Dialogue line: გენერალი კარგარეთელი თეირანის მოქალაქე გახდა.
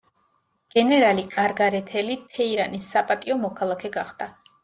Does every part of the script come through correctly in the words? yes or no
no